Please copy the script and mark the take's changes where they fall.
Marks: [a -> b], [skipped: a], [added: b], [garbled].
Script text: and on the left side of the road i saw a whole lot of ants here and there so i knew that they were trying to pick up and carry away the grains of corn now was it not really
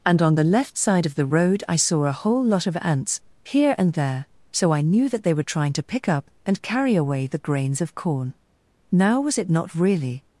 and on the left side of the road i saw a whole lot of ants here and there so i knew that they were trying to pick up and carry away the grains of corn now was it not really